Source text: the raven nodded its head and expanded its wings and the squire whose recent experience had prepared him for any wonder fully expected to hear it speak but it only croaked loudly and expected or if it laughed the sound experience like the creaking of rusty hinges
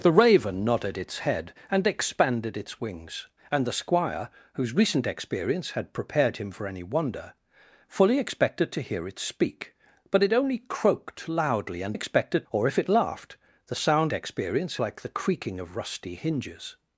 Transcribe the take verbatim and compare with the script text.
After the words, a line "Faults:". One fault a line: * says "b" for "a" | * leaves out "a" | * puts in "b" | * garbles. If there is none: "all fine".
the raven nodded its head and expanded its wings and the squire whose recent experience had prepared him for any wonder fully expected to hear it speak but it only croaked loudly and expected or if it laughed the sound experience like the creaking of rusty hinges
Faults:
all fine